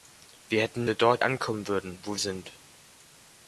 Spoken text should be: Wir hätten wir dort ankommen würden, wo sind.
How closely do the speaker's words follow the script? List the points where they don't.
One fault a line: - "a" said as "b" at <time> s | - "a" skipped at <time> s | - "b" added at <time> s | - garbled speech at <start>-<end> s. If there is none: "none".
none